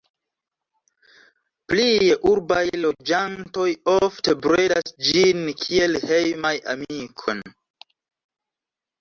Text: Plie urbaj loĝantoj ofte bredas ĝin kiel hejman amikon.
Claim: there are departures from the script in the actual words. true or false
false